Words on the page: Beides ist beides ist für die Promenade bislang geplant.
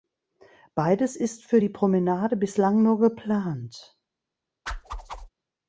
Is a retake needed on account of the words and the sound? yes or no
yes